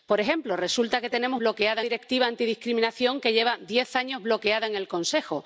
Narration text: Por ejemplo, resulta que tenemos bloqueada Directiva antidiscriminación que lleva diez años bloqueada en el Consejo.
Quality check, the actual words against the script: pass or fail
pass